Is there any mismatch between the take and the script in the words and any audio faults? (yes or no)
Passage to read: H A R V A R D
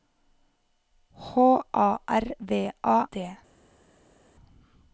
yes